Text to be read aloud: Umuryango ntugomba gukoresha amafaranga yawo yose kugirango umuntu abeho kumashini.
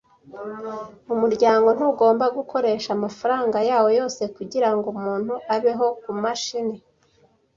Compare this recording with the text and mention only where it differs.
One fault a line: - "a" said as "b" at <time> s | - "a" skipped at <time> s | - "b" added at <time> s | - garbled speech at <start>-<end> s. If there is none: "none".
none